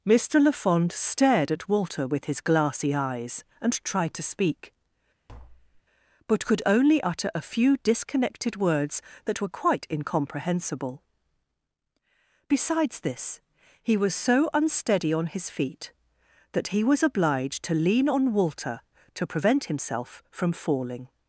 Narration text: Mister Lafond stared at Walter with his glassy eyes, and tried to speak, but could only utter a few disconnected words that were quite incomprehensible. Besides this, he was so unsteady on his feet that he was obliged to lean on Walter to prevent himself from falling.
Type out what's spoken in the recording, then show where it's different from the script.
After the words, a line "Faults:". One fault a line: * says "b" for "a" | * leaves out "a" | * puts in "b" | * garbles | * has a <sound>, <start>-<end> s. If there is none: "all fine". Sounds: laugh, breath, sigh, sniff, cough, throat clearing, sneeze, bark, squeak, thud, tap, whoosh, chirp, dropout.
Mister Lafond stared at Walter with his glassy eyes, and tried to speak, but could only utter a few disconnected words that were quite incomprehensible. Besides this, he was so unsteady on his feet that he was obliged to lean on Walter to prevent himself from falling.
Faults:
* has a tap, 5.3-5.8 s